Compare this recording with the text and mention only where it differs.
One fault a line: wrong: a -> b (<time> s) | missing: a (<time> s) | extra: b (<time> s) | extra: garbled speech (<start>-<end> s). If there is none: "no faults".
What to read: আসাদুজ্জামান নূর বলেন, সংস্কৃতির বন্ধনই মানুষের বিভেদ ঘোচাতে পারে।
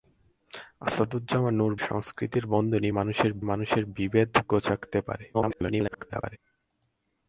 missing: বলেন (1.7 s)
extra: মানুষের (3.4 s)
extra: garbled speech (5.3-6.4 s)